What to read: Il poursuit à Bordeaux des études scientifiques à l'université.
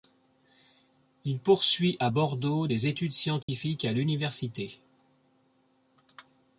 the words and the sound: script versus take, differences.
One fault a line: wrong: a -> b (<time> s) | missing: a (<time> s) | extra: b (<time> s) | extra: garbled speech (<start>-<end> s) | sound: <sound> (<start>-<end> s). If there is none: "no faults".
sound: dropout (3.4-3.5 s)